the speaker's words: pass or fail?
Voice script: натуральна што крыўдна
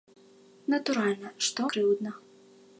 pass